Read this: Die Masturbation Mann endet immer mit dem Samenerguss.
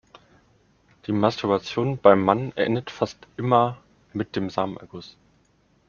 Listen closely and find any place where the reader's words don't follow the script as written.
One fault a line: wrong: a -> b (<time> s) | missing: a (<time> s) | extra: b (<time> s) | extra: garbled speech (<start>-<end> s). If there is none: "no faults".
extra: beim (2.0 s)
extra: fast (2.9 s)